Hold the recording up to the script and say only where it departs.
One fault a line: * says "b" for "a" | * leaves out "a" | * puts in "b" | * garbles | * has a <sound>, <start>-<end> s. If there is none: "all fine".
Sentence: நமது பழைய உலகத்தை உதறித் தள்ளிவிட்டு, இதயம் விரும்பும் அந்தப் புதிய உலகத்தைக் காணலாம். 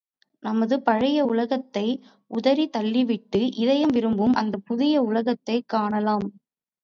all fine